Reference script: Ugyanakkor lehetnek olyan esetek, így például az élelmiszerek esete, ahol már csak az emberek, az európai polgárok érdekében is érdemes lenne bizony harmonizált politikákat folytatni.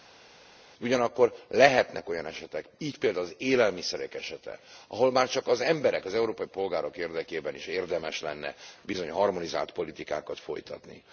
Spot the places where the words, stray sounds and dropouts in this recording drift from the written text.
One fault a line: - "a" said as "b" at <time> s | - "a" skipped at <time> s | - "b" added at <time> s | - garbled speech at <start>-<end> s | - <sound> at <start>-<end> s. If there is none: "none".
none